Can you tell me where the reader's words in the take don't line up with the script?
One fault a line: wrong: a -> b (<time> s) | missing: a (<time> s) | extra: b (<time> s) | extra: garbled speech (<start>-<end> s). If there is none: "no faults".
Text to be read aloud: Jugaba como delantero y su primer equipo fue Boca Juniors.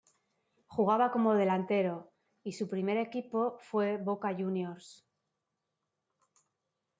no faults